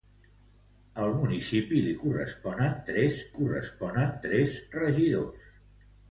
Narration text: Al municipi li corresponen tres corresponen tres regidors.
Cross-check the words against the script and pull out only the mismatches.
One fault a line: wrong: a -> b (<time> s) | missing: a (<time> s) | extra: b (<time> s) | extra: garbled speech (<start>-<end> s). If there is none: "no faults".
no faults